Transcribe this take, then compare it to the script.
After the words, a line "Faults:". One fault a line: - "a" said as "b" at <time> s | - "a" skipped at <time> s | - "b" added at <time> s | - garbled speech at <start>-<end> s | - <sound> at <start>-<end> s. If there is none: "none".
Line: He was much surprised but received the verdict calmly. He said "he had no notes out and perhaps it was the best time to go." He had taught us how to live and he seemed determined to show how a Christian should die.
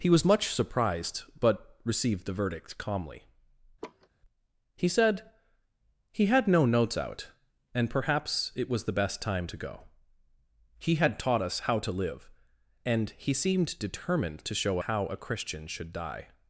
He was much surprised but received the verdict calmly. He said "he had no notes out and perhaps it was the best time to go." He had taught us how to live and he seemed determined to show how a Christian should die.
Faults:
- laugh at 3.8-4.1 s